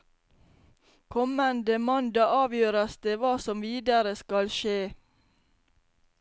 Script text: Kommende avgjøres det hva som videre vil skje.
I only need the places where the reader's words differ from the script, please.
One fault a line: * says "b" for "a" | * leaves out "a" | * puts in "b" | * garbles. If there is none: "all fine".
* puts in "mandag"
* says "skal" for "vil"